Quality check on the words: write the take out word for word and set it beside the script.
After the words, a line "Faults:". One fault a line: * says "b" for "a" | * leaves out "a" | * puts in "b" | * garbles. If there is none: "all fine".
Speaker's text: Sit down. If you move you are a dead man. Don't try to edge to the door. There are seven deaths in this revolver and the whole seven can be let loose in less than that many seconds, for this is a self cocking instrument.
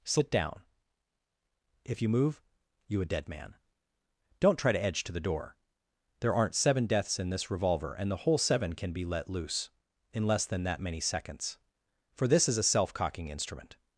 Sit down. If you move you a dead man. Don't try to edge to the door. There aren't seven deaths in this revolver and the whole seven can be let loose in less than that many seconds, for this is a self cocking instrument.
Faults:
* leaves out "are"
* says "aren't" for "are"